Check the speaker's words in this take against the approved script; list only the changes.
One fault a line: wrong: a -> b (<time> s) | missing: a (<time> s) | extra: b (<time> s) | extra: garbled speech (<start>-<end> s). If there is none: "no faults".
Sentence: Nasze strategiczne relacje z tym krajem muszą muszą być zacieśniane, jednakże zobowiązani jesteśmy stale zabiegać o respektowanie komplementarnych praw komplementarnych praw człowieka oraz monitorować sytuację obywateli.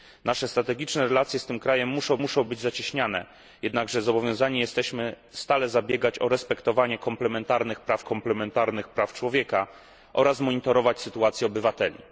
no faults